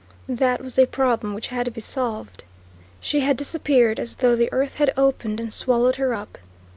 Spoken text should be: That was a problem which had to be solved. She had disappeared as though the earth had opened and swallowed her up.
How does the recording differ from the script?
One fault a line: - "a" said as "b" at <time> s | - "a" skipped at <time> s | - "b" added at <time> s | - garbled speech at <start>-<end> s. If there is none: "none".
none